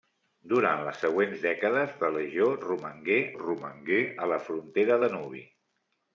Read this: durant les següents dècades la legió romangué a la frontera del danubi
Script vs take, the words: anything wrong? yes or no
yes